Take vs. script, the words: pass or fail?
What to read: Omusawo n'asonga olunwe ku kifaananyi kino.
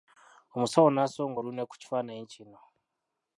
pass